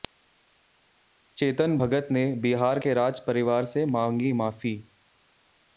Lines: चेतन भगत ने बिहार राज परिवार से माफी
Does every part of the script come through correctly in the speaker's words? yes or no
no